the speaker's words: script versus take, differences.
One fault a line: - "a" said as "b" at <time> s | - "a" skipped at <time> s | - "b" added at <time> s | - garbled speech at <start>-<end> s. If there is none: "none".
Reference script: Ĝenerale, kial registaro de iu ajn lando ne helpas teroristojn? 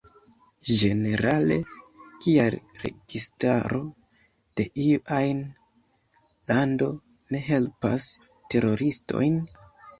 none